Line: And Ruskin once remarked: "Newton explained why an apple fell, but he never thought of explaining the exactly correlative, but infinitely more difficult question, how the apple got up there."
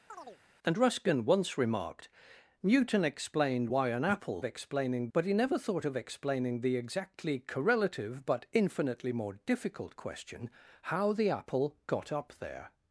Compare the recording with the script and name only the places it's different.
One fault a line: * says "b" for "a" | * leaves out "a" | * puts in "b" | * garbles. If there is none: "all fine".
* says "explaining" for "fell"